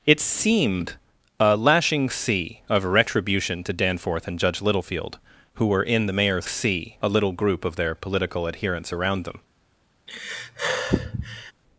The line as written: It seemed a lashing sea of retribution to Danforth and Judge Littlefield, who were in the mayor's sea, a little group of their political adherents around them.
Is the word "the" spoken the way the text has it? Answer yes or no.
yes